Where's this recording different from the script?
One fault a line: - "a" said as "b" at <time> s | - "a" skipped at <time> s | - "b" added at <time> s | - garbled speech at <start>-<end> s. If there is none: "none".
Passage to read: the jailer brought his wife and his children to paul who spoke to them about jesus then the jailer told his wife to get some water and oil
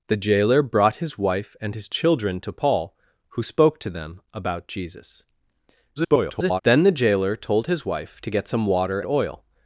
- garbled speech at 6.0-6.6 s
- "and" skipped at 9.0 s